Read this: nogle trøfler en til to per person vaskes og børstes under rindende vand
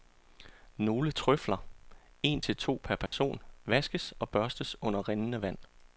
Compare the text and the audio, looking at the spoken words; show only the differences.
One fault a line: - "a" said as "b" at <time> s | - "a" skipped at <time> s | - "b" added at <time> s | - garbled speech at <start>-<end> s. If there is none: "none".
none